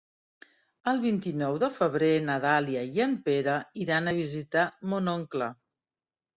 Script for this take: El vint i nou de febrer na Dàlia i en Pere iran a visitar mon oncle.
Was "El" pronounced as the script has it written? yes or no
yes